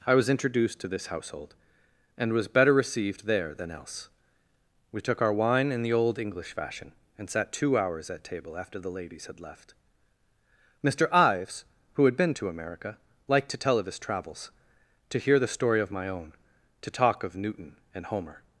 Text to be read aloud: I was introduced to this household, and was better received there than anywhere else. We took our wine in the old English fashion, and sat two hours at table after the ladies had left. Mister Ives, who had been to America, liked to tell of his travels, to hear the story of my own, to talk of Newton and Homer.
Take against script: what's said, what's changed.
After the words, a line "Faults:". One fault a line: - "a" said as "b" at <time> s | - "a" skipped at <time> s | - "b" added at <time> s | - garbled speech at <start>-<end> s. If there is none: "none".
I was introduced to this household, and was better received there than else. We took our wine in the old English fashion, and sat two hours at table after the ladies had left. Mister Ives, who had been to America, liked to tell of his travels, to hear the story of my own, to talk of Newton and Homer.
Faults:
- "anywhere" skipped at 3.7 s